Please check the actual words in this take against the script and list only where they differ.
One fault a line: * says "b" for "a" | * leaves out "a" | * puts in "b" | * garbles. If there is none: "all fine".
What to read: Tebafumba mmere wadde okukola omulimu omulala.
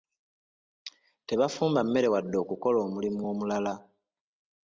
all fine